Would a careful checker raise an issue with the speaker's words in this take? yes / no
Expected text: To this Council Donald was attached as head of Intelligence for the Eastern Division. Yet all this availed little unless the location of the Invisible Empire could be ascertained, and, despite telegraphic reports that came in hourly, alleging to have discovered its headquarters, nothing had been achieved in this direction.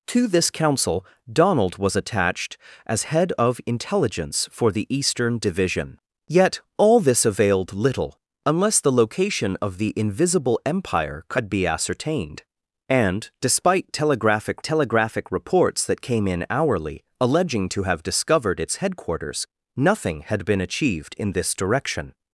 yes